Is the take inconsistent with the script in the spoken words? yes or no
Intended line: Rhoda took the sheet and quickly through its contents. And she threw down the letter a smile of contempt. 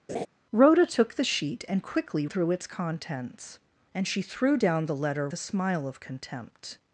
no